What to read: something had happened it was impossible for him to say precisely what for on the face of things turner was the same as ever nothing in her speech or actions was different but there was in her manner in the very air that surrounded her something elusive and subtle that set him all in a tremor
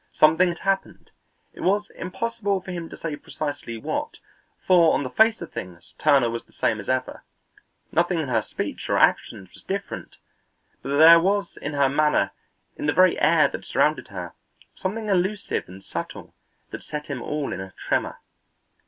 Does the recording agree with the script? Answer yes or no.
yes